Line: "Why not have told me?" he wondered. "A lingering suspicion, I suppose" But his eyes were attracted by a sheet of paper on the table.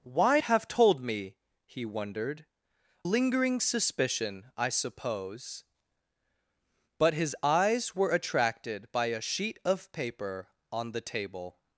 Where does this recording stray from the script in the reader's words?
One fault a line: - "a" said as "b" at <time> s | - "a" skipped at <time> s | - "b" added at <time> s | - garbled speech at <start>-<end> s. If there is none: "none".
- "not" skipped at 0.4 s
- "A" skipped at 2.5 s